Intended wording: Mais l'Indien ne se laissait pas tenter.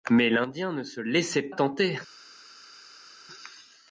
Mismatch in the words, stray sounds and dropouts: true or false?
true